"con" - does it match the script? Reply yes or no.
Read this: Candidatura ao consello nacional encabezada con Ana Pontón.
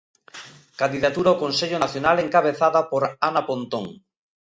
no